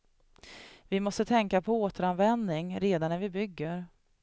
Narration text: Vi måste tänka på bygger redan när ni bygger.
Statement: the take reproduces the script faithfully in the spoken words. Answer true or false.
false